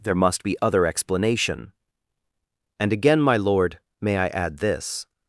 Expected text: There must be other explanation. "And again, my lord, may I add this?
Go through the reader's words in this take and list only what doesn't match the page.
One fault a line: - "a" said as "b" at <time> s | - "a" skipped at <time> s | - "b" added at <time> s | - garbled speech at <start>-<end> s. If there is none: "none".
none